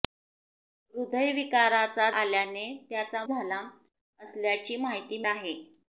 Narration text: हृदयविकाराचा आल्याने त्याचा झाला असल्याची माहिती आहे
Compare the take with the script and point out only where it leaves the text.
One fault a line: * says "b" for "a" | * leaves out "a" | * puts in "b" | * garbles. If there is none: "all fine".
all fine